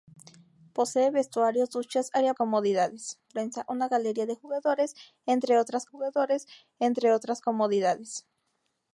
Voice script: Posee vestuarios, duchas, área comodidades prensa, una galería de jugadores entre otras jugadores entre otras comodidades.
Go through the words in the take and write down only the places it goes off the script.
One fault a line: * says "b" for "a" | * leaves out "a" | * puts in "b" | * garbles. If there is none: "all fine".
all fine